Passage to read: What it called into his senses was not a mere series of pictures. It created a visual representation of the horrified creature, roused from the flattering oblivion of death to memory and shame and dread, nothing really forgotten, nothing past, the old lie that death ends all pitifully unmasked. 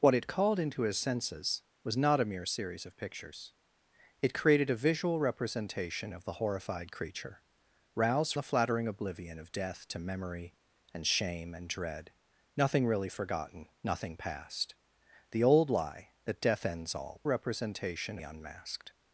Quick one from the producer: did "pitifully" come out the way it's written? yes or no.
no